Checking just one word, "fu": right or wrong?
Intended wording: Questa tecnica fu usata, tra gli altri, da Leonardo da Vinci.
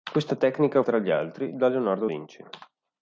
wrong